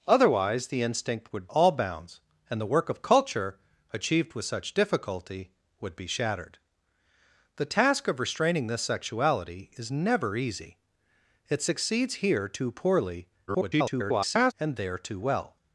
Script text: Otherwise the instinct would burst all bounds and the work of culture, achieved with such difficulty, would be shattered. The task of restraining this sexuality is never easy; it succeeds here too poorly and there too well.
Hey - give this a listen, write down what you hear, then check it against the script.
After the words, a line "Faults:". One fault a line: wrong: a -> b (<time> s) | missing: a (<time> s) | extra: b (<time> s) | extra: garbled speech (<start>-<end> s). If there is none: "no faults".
Otherwise the instinct would all bounds and the work of culture, achieved with such difficulty, would be shattered. The task of restraining this sexuality is never easy; it succeeds here too poorly [garbled] and there too well.
Faults:
missing: burst (1.5 s)
extra: garbled speech (13.5-14.5 s)